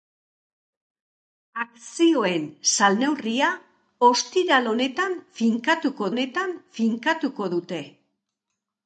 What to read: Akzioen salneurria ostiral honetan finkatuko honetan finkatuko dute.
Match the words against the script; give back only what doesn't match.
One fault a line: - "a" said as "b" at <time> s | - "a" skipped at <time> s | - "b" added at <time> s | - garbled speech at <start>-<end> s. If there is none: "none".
none